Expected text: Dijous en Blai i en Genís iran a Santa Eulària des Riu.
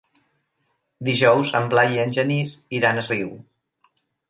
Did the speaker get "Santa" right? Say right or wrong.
wrong